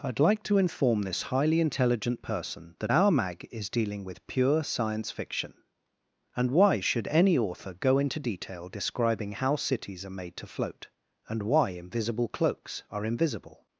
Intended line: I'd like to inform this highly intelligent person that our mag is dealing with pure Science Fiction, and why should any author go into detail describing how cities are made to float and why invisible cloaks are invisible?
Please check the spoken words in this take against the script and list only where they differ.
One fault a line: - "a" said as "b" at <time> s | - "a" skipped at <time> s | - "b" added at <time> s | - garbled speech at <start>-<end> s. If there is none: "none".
none